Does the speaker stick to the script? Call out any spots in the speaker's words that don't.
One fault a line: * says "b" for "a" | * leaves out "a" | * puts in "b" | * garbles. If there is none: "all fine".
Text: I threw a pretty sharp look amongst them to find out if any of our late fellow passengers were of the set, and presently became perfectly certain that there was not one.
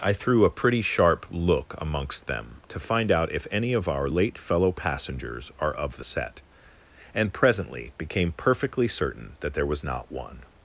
* says "are" for "were"